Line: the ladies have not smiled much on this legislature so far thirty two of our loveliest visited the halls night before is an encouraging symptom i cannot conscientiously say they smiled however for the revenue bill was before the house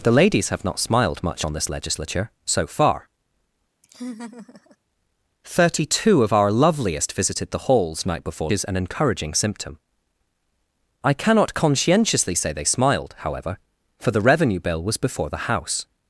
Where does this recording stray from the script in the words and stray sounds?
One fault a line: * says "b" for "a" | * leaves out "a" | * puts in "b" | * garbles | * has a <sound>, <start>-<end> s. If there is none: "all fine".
* has a laugh, 3.8-4.8 s